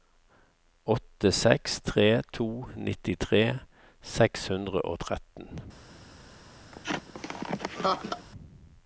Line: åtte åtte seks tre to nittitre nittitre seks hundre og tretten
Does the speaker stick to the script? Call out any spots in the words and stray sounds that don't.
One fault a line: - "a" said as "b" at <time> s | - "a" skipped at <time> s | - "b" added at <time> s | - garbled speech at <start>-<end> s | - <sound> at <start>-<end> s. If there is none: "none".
- "åtte" skipped at 1.3 s
- "nittitre" skipped at 3.4 s
- laugh at 6.7-8.3 s